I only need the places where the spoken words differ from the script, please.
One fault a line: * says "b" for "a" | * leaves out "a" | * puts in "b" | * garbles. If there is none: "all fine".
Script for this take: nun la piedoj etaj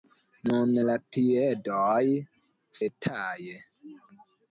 all fine